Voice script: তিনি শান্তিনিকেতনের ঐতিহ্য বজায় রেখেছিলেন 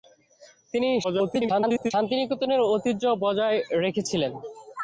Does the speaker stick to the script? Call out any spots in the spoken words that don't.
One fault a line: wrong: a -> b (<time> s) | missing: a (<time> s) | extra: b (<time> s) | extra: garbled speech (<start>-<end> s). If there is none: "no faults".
extra: garbled speech (1.0-1.9 s)